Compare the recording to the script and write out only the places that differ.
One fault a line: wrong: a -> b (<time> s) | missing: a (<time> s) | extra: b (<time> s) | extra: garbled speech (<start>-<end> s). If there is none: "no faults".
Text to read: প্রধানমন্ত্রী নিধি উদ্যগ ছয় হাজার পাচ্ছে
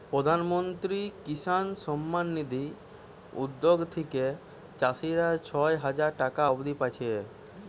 extra: কিষান সম্মান (1.2 s)
extra: থিকে চাষীরা (3.9 s)
extra: টাকা অব্দি (6.2 s)